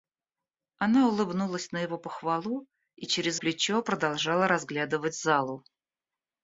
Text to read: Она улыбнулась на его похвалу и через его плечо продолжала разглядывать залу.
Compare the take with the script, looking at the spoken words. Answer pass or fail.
fail